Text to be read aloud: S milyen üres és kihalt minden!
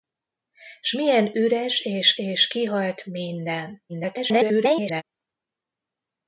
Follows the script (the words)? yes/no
no